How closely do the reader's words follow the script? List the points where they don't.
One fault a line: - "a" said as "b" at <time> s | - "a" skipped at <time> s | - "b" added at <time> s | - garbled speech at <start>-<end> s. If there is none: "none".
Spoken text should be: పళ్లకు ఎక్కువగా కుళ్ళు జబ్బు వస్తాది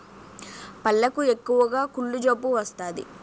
none